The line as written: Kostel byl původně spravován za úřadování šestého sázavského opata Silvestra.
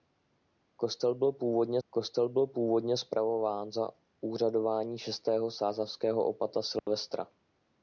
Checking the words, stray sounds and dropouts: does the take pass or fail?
fail